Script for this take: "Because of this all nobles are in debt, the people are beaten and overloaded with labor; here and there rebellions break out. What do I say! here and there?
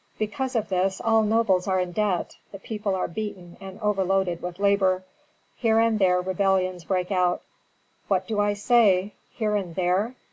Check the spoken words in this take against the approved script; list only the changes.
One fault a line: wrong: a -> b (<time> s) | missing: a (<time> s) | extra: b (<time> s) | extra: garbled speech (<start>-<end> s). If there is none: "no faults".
no faults